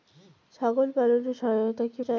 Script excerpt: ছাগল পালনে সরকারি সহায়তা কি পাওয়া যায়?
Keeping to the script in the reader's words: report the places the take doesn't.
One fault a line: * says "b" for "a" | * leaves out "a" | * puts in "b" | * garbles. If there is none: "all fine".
* leaves out "সরকারি"
* leaves out "পাওয়া"